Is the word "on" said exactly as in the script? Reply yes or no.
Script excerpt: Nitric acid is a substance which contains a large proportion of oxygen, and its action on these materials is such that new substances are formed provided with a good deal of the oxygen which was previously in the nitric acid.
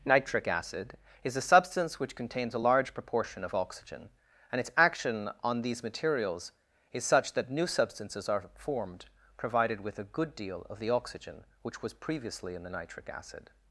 yes